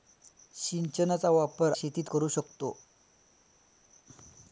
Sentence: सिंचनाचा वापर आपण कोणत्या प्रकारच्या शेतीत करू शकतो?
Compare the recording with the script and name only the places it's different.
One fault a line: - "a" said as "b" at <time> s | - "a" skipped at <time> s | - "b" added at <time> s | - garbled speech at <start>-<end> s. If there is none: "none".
- "आपण कोणत्या प्रकारच्या" skipped at 1.7 s